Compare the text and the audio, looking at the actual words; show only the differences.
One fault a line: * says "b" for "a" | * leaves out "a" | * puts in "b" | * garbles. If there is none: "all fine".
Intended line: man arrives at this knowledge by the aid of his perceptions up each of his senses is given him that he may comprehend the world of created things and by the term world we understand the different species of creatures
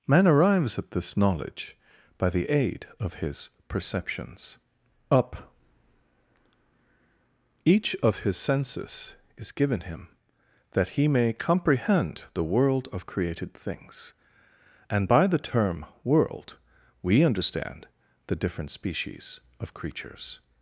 all fine